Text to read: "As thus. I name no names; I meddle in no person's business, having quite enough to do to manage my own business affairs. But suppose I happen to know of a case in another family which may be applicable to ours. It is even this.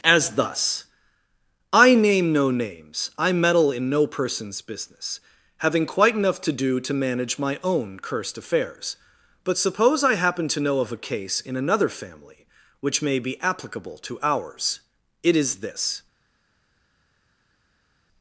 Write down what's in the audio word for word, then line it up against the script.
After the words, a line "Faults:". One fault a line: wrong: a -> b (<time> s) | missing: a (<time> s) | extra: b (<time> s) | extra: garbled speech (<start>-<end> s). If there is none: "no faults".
"As thus. I name no names; I meddle in no person's business, having quite enough to do to manage my own cursed affairs. But suppose I happen to know of a case in another family which may be applicable to ours. It is this.
Faults:
wrong: business -> cursed (8.0 s)
missing: even (15.6 s)